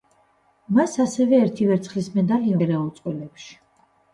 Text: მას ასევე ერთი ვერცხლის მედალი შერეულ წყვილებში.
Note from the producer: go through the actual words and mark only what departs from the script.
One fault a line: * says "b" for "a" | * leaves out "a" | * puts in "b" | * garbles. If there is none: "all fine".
all fine